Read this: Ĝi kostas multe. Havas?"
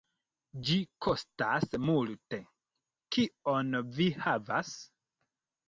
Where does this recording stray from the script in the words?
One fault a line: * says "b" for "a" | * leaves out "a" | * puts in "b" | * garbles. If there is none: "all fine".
* puts in "Kion vi"